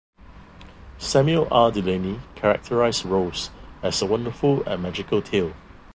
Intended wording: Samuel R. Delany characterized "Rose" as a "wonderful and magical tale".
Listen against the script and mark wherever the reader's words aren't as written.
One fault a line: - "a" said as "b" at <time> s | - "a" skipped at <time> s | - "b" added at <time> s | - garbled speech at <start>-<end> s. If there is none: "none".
none